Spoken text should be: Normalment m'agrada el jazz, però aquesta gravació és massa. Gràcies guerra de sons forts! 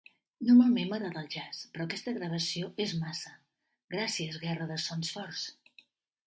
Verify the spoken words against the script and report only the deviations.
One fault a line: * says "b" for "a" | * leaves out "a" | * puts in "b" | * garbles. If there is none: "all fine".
all fine